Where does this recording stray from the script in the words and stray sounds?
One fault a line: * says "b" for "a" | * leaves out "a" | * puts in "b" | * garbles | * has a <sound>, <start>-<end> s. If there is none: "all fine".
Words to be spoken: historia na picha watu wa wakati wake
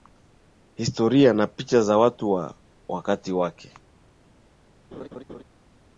* puts in "za"
* has a laugh, 4.9-5.4 s